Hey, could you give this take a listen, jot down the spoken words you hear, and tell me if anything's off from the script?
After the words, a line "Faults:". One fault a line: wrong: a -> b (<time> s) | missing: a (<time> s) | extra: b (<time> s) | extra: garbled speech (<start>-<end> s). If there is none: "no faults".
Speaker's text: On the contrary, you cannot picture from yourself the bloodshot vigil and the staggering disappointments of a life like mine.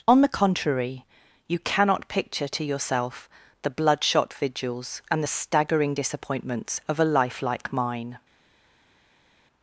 On the contrary, you cannot picture to yourself the bloodshot vigils and the staggering disappointments of a life like mine.
Faults:
wrong: from -> to (2.5 s)
wrong: vigil -> vigils (4.3 s)